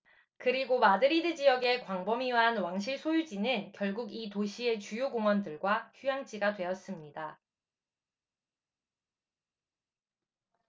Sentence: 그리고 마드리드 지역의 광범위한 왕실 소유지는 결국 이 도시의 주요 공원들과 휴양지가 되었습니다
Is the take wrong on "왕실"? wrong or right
right